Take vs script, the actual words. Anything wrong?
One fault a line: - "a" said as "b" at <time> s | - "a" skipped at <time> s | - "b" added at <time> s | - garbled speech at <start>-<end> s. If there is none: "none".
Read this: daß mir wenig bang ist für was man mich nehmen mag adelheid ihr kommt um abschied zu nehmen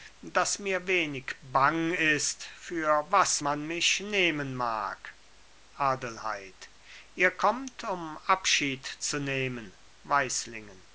none